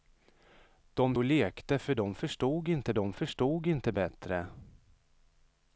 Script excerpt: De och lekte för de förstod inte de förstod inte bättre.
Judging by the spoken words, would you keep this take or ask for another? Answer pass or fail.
pass